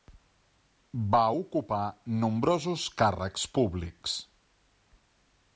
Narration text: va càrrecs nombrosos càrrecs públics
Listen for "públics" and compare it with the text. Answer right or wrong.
right